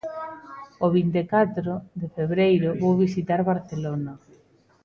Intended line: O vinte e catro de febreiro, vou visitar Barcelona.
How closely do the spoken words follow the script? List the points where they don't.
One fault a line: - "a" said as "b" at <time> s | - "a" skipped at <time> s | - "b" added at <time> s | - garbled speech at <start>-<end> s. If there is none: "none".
none